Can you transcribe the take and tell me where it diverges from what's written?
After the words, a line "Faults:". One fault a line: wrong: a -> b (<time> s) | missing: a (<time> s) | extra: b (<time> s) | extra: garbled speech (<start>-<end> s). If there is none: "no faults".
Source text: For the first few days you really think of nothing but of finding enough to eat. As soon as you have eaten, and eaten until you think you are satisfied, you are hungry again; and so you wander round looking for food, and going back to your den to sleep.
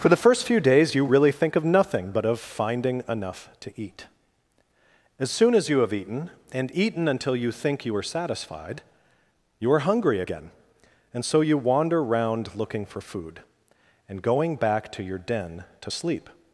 For the first few days you really think of nothing but of finding enough to eat. As soon as you have eaten, and eaten until you think you are satisfied, you are hungry again; and so you wander round looking for food, and going back to your den to sleep.
Faults:
no faults